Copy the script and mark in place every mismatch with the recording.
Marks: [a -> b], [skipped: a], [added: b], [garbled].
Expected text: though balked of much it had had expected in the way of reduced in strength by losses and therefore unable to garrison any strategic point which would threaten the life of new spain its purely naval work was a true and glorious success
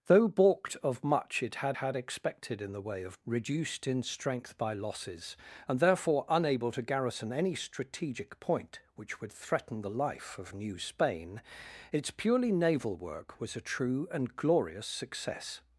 though balked of much it had had expected in the way of reduced in strength by losses and therefore unable to garrison any strategic point which would threaten the life of new spain its purely naval work was a true and glorious success